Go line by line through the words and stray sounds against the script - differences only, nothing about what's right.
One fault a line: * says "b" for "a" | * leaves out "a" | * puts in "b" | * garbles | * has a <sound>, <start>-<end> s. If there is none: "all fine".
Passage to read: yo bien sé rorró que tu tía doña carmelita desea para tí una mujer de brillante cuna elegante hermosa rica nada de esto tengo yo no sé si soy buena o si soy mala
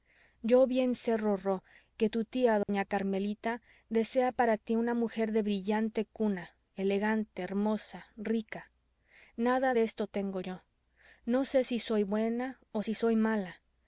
* has a dropout, 2.6-2.7 s